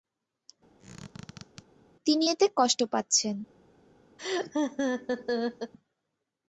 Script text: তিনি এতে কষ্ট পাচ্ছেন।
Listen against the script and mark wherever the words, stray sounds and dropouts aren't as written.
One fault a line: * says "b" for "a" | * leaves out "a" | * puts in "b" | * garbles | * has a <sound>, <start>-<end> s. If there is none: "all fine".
* has a squeak, 0.8-1.6 s
* has a laugh, 4.2-5.7 s